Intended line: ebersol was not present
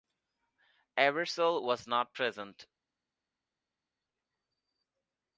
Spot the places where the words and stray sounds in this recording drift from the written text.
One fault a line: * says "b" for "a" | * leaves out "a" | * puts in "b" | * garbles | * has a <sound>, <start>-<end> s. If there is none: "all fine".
all fine